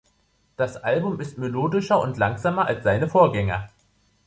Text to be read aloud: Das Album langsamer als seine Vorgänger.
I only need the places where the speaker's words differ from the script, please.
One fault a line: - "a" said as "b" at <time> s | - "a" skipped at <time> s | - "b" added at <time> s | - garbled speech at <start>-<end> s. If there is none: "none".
- "ist melodischer und" added at 1.2 s